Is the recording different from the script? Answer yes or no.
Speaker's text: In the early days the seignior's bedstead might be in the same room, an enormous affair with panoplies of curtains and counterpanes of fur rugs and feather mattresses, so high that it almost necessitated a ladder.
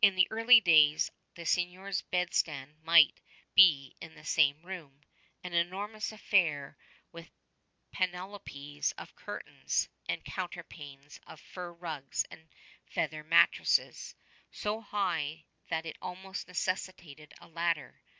no